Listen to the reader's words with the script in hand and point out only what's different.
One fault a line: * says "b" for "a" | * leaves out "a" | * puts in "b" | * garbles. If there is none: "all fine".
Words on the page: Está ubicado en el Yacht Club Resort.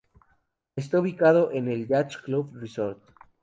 all fine